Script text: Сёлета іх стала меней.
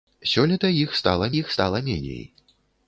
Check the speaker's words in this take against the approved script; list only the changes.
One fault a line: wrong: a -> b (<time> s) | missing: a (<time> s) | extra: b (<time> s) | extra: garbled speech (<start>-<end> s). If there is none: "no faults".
extra: іх стала (1.4 s)